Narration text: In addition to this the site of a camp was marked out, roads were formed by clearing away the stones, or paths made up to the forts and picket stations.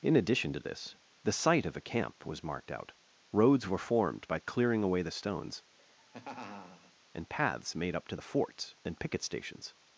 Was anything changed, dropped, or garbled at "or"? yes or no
yes